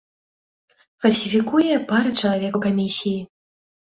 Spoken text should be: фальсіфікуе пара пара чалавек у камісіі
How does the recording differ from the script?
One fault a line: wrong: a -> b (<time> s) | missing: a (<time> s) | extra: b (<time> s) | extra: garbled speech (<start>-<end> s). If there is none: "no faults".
missing: пара (2.1 s)